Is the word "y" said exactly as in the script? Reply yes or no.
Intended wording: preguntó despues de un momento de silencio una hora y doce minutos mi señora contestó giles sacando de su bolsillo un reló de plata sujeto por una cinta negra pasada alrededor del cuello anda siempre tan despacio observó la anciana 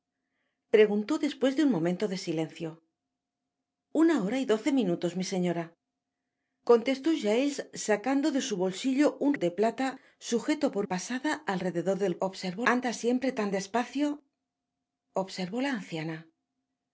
yes